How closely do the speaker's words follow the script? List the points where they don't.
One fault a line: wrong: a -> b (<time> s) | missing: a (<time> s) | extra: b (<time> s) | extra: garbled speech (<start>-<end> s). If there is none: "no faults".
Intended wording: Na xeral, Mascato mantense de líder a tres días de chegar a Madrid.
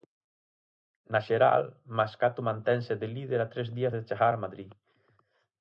no faults